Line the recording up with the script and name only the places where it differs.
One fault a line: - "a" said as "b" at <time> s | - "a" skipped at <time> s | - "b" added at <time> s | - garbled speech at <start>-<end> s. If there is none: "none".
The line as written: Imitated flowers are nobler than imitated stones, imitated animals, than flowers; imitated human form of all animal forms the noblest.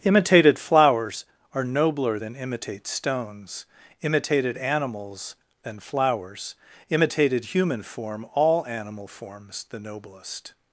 - "imitated" said as "imitate" at 2.4 s
- "of" skipped at 8.2 s